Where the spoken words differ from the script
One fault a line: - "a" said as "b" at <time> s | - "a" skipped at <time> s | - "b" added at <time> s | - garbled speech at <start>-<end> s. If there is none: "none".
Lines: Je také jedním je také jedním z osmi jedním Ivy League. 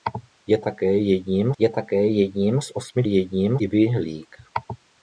none